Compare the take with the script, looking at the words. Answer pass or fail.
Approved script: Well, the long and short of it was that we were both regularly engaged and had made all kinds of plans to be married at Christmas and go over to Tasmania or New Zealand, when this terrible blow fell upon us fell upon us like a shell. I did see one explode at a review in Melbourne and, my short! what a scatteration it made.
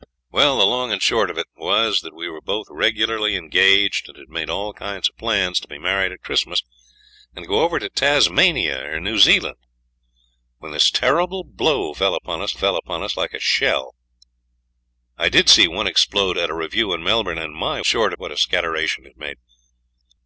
pass